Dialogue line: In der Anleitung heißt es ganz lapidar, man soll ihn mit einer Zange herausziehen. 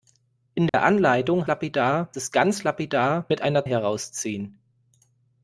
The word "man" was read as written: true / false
false